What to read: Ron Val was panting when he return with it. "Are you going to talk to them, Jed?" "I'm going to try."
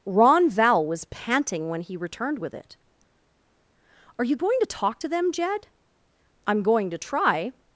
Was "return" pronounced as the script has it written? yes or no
no